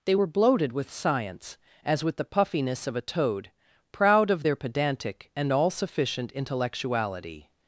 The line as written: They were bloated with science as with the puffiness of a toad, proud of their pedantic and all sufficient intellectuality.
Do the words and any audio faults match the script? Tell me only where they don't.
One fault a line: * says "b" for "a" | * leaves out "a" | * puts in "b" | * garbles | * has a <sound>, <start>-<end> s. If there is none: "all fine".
all fine